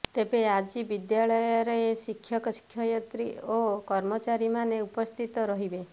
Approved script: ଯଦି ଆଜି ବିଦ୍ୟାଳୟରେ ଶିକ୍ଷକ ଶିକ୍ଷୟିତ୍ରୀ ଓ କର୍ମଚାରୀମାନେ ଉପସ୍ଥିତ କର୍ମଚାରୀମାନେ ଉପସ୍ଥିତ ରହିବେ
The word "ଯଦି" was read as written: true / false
false